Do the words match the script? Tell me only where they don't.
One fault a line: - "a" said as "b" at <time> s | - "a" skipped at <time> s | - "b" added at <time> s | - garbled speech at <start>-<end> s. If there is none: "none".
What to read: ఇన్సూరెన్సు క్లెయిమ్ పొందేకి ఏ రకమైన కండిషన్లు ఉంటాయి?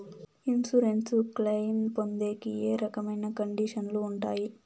none